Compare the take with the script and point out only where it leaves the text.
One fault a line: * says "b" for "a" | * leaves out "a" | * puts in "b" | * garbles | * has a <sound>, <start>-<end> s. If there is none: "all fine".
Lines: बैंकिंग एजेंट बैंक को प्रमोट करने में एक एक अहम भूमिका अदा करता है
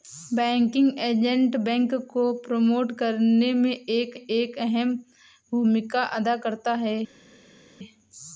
all fine